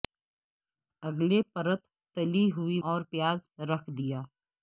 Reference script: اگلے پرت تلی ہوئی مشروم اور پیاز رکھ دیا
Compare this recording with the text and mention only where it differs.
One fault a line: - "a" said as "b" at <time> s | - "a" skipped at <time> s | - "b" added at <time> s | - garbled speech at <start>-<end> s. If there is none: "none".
- "مشروم" skipped at 2.8 s